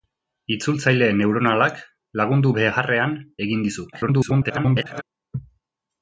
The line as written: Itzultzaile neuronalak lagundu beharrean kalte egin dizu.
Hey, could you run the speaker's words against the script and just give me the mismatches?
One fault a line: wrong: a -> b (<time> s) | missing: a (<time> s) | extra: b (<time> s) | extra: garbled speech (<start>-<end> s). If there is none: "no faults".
missing: kalte (3.1 s)
extra: garbled speech (3.9-5.0 s)